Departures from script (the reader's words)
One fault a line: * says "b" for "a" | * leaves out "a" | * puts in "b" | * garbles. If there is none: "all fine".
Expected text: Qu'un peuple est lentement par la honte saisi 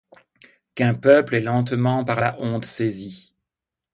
all fine